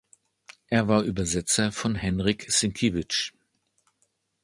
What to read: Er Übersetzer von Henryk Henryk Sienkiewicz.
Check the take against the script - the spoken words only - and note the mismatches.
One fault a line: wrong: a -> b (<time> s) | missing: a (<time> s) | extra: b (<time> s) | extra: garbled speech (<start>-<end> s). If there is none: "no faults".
extra: war (0.9 s)
missing: Henryk (2.5 s)